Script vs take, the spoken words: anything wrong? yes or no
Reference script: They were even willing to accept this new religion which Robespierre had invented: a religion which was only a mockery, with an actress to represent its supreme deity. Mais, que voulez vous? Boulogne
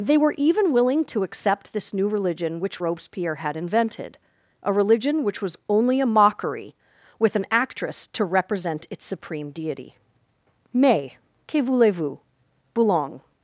no